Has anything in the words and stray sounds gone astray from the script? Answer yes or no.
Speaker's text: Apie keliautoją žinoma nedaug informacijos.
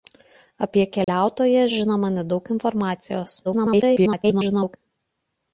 yes